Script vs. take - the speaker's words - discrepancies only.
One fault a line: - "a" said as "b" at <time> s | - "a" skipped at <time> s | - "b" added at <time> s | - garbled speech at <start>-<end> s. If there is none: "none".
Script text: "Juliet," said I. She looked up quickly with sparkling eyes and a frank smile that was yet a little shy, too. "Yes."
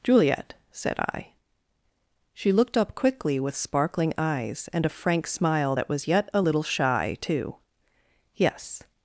none